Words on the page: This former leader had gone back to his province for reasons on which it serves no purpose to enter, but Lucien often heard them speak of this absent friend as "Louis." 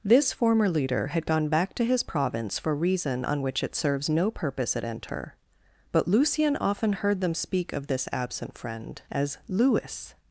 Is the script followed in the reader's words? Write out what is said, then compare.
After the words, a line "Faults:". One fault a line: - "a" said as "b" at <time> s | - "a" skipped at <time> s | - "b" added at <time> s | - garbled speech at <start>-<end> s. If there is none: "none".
This former leader had gone back to his province for reason on which it serves no purpose at enter, but Lucien often heard them speak of this absent friend as "Louis."
Faults:
- "reasons" said as "reason" at 2.8 s
- "to" said as "at" at 4.8 s